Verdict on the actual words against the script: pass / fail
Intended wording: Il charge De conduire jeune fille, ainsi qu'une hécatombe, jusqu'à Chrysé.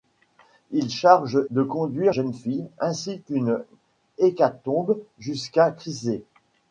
pass